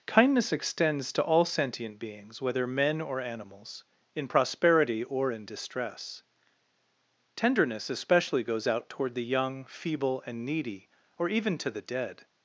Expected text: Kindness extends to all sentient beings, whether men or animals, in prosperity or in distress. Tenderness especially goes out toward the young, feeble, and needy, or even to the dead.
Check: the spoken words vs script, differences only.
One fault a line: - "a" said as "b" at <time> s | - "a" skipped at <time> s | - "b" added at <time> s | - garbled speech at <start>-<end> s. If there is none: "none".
none